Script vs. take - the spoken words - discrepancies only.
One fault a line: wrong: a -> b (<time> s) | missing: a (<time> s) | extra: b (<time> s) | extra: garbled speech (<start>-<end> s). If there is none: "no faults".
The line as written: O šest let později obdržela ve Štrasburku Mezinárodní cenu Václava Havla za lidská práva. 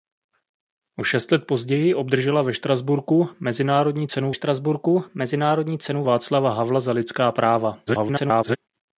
extra: Štrasburku Mezinárodní cenu (4.3 s)
extra: garbled speech (7.9-8.6 s)